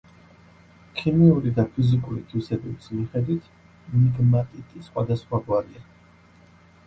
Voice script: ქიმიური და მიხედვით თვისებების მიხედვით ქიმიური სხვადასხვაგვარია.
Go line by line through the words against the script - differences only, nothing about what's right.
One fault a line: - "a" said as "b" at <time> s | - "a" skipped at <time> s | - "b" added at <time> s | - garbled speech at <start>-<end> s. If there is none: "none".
- "მიხედვით" said as "ფიზიკური" at 1.8 s
- "ქიმიური" said as "მიგმატიტი" at 4.0 s